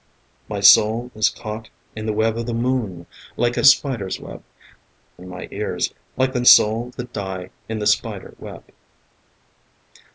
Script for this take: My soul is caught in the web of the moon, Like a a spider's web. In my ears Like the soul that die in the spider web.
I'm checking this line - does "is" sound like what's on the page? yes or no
yes